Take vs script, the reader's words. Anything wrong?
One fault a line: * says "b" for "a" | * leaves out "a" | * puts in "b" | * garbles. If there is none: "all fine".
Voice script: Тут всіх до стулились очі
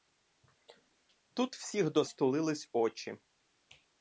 all fine